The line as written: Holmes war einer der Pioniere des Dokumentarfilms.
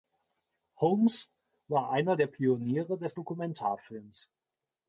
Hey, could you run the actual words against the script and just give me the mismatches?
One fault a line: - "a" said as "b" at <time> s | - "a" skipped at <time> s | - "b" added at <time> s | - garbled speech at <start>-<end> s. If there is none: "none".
none